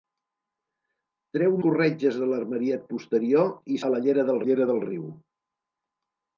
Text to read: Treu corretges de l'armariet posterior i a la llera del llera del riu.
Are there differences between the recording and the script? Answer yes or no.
no